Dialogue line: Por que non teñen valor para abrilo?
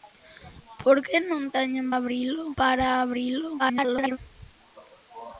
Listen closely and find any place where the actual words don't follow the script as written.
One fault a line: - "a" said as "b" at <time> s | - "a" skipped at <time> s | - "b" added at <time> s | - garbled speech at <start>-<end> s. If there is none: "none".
- "valor" said as "abrilo" at 2.0 s
- garbled speech at 3.6-4.2 s